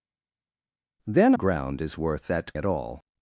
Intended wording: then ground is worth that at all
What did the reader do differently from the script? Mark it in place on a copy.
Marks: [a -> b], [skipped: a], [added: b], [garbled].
then ground is worth that at all